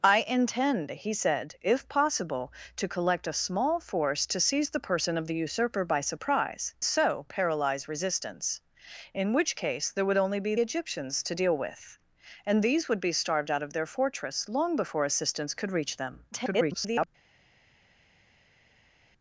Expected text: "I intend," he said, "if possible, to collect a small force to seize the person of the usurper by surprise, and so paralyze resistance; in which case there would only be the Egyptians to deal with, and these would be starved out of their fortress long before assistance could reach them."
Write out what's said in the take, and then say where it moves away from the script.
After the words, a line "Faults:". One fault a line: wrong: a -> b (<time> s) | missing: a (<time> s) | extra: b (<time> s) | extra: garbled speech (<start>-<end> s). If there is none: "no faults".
"I intend," he said, "if possible, to collect a small force to seize the person of the usurper by surprise, so paralyze resistance; in which case there would only be Egyptians to deal with, and these would be starved out of their fortress long before assistance could reach them." [garbled]
Faults:
missing: and (6.7 s)
missing: the (10.5 s)
extra: garbled speech (16.3-17.1 s)